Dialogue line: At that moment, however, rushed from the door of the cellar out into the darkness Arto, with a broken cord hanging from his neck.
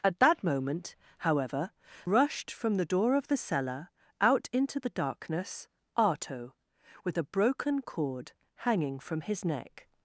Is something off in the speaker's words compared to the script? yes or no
no